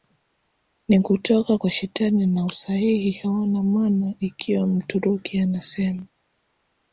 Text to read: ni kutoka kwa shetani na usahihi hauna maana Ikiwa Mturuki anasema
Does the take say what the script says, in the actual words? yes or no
yes